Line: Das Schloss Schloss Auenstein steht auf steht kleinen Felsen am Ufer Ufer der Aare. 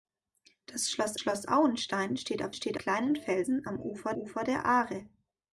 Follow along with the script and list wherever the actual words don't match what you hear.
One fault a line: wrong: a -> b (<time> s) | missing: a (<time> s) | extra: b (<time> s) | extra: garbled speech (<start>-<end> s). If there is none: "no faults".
no faults